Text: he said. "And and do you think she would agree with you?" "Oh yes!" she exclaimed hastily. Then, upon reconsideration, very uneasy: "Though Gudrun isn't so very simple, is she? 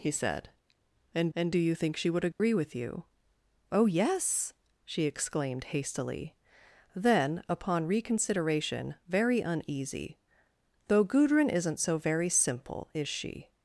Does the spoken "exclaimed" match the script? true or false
true